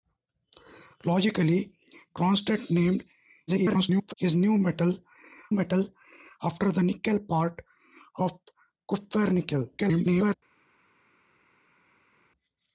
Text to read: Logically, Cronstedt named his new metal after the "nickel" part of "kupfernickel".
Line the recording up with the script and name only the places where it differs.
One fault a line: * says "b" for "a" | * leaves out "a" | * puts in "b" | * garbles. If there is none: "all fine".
* garbles
* puts in "metal"
* garbles